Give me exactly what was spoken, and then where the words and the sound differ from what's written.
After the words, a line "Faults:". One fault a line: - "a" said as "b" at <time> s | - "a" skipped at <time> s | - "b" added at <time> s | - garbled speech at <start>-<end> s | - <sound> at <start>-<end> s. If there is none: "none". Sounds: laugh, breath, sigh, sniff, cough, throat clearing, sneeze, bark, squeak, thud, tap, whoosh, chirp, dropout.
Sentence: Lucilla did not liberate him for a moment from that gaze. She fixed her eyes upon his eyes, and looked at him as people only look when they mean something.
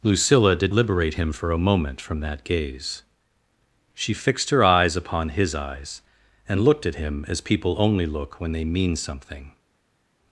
Lucilla did liberate him for a moment from that gaze. She fixed her eyes upon his eyes, and looked at him as people only look when they mean something.
Faults:
- "not" skipped at 0.7 s